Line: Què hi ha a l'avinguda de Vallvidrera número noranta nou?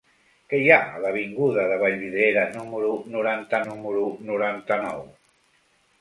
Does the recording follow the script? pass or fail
fail